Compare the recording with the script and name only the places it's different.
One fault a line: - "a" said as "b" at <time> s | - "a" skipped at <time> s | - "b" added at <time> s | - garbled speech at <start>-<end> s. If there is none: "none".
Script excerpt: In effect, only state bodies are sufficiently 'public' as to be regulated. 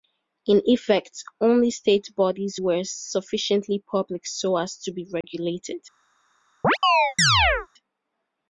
- "are" said as "were" at 2.6 s
- "so" added at 4.3 s